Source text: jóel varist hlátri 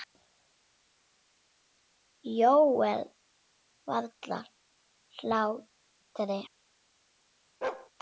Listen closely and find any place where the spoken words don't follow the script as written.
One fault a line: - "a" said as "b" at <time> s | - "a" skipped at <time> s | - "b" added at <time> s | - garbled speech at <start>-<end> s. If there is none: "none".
none